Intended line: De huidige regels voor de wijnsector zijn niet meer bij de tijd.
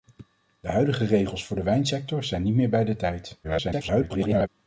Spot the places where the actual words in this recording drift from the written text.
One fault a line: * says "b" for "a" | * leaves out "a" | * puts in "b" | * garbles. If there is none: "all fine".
* garbles